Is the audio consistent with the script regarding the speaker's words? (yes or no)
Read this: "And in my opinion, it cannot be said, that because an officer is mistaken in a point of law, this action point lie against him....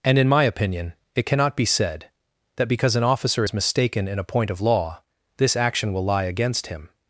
no